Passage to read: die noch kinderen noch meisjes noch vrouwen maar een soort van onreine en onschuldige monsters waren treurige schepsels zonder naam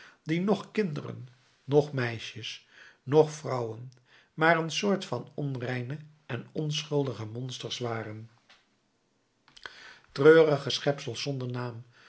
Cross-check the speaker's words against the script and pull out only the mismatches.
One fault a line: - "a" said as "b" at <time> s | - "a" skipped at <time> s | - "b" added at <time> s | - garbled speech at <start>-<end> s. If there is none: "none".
none